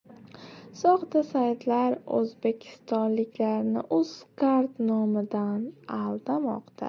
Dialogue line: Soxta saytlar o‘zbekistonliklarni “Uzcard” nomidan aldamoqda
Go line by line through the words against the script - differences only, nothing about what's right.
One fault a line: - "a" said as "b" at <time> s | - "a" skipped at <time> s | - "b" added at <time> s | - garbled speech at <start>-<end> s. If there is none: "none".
none